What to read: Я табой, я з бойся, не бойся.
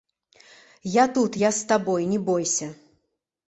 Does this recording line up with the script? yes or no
no